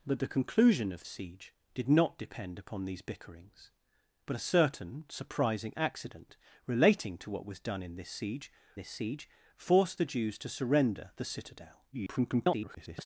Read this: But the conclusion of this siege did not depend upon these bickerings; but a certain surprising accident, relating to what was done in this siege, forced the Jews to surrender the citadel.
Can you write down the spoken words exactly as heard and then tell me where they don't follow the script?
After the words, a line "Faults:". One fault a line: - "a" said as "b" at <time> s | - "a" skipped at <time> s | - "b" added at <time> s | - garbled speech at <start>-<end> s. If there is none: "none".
But the conclusion of siege did not depend upon these bickerings; but a certain surprising accident, relating to what was done in this siege this siege, forced the Jews to surrender the citadel. [garbled]
Faults:
- "this" skipped at 1.1 s
- "this siege" added at 8.8 s
- garbled speech at 11.9-13.1 s